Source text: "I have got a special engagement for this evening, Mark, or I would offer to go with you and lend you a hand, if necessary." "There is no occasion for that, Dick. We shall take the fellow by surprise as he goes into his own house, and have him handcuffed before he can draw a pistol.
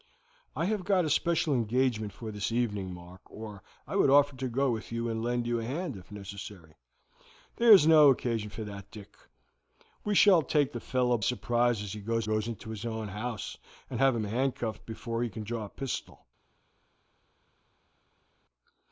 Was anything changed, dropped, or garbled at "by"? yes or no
yes